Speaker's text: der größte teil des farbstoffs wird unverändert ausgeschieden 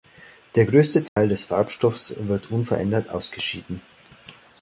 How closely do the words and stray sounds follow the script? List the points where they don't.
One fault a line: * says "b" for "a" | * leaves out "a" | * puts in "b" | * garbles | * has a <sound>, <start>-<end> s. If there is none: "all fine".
* has a dropout, 1.1-1.2 s